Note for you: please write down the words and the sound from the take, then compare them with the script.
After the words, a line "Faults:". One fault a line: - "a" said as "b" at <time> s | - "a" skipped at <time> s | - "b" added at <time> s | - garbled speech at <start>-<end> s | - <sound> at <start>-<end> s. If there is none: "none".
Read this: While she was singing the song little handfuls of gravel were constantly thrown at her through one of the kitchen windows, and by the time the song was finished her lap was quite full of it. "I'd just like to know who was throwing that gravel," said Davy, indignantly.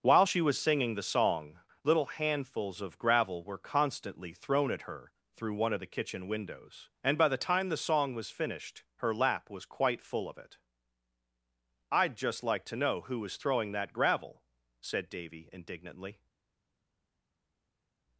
While she was singing the song little handfuls of gravel were constantly thrown at her through one of the kitchen windows, and by the time the song was finished her lap was quite full of it. "I'd just like to know who was throwing that gravel," said Davy, indignantly.
Faults:
none